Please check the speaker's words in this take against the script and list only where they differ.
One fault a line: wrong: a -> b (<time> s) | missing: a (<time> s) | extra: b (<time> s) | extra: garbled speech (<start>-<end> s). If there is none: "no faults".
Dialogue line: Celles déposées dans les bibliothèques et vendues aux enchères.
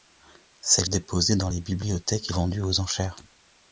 no faults